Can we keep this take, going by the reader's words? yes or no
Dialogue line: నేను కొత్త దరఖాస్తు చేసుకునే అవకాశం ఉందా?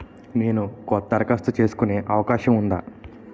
yes